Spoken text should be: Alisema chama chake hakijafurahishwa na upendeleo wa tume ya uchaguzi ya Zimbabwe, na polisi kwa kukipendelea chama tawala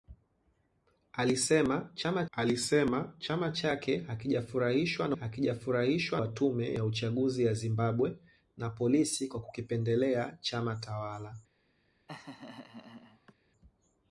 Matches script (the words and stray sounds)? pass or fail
fail